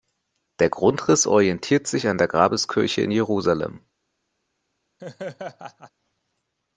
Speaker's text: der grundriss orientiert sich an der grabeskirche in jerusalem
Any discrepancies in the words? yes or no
no